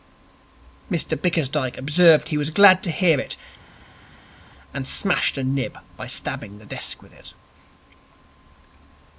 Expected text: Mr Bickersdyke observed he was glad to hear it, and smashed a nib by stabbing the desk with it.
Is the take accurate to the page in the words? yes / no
yes